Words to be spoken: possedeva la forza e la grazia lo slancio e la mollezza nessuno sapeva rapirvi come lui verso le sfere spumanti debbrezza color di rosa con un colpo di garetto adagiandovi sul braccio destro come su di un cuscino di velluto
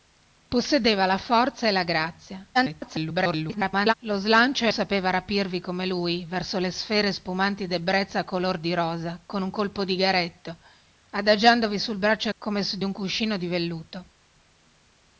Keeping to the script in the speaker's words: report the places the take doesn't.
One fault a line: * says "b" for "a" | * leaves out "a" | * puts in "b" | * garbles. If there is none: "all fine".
* garbles
* leaves out "la mollezza nessuno"
* leaves out "destro"